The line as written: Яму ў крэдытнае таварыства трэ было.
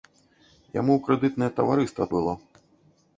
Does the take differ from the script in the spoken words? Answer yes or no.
yes